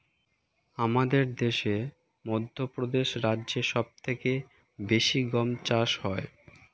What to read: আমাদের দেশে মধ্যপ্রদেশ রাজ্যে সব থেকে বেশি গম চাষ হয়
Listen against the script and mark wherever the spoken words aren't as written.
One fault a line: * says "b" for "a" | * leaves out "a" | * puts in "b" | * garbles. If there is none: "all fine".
all fine